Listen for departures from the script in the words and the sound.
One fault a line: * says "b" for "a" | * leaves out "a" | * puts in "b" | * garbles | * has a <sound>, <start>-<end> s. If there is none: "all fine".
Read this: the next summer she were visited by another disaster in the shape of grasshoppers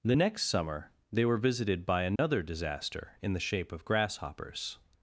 * says "they" for "she"
* has a dropout, 2.2-2.2 s